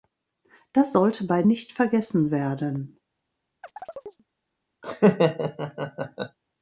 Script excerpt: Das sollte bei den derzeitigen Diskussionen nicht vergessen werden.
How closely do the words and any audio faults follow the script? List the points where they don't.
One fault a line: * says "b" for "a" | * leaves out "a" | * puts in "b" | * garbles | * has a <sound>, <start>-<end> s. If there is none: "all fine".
* leaves out "den derzeitigen Diskussionen"
* has a chirp, 3.6-4.2 s
* has a laugh, 4.8-6.4 s